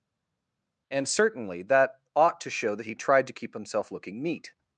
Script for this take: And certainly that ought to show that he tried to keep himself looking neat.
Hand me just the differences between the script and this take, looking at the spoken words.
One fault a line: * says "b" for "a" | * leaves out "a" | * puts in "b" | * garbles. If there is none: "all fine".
all fine